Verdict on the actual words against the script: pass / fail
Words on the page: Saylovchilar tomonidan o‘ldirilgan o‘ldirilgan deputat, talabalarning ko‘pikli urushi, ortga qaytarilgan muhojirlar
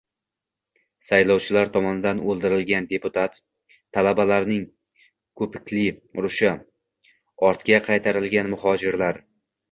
fail